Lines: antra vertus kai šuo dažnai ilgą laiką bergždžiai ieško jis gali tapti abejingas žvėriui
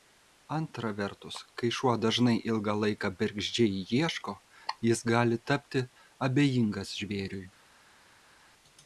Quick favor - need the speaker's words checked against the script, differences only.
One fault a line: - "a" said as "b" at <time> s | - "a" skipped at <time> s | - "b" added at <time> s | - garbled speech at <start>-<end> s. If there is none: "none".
none